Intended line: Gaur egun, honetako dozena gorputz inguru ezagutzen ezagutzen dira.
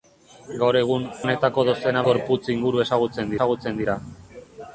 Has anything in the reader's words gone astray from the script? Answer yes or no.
no